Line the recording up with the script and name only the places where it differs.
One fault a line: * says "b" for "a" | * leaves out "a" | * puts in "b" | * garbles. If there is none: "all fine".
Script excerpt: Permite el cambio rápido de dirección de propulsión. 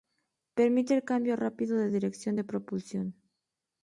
all fine